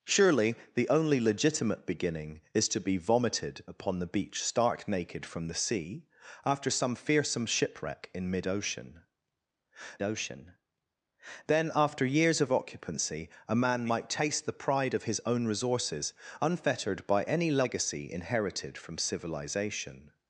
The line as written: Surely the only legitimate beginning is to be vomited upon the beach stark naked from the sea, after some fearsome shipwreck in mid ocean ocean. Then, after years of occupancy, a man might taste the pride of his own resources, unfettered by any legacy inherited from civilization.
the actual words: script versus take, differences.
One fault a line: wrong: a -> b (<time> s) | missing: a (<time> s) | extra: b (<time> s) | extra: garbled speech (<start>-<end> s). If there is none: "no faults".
no faults